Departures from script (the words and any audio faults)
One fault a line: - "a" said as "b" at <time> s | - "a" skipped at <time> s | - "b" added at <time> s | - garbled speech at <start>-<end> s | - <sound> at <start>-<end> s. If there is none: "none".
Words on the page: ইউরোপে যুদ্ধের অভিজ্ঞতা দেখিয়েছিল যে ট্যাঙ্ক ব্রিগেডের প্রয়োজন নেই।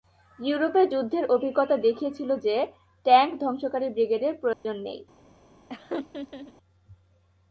- "ধ্বংসকারী" added at 3.4 s
- dropout at 4.5-4.7 s
- laugh at 5.7-6.5 s